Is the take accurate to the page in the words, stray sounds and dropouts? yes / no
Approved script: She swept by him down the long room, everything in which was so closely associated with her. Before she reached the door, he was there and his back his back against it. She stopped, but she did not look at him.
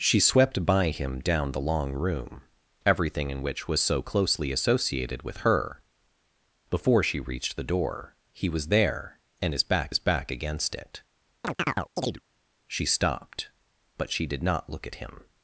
no